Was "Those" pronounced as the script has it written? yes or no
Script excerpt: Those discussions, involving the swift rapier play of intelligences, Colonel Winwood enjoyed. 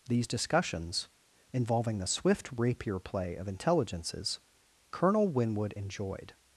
no